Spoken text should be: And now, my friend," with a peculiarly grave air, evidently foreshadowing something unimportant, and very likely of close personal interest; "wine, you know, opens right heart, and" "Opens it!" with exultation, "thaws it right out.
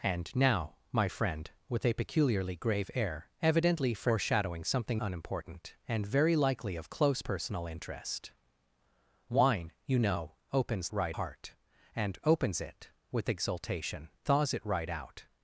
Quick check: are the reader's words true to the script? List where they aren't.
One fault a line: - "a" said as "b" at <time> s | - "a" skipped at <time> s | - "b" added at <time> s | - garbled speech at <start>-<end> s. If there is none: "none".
none